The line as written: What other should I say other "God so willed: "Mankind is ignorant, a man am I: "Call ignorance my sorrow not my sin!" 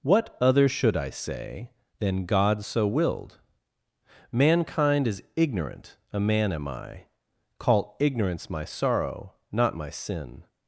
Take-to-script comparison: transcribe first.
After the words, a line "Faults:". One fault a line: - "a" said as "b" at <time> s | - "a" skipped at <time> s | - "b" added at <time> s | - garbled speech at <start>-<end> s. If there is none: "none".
What other should I say than "God so willed: "Mankind is ignorant, a man am I: "Call ignorance my sorrow not my sin!"
Faults:
- "other" said as "than" at 2.0 s